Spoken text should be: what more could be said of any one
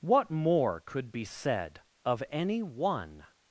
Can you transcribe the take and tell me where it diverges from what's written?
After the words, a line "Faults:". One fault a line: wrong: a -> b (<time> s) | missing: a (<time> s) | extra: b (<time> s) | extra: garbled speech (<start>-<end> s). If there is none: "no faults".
what more could be said of any one
Faults:
no faults